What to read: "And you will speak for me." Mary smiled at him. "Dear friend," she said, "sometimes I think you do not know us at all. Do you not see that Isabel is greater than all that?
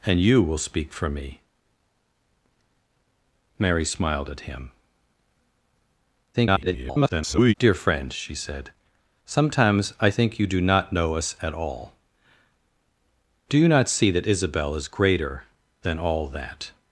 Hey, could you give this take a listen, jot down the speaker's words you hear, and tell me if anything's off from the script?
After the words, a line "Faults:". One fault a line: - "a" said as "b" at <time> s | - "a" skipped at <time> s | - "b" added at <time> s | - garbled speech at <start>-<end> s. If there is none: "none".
"And you will speak for me." Mary smiled at him. [garbled] "Dear friend," she said, "sometimes I think you do not know us at all. Do you not see that Isabel is greater than all that?
Faults:
- garbled speech at 6.3-7.5 s